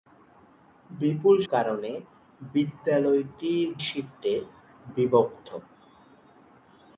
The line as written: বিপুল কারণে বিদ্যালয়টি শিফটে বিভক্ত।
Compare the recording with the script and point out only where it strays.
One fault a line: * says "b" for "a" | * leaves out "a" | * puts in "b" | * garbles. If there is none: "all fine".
all fine